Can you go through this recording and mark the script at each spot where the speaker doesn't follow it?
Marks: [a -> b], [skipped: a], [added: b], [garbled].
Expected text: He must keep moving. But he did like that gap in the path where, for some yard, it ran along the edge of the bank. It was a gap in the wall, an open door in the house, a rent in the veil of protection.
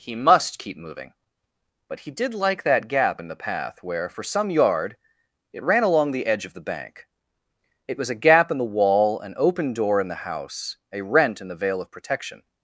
He must keep moving. But he did like that gap in the path where, for some yard, it ran along the edge of the bank. It was a gap in the wall, an open door in the house, a rent in the veil of protection.